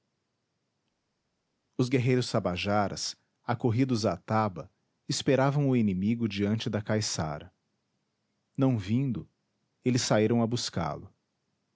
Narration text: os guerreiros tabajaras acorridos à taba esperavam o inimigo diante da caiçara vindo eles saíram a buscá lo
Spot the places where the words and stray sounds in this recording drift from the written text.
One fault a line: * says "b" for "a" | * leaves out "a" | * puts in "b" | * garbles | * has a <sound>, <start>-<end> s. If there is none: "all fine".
* puts in "não"